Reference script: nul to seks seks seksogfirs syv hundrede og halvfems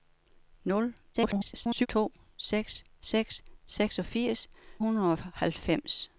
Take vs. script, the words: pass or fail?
fail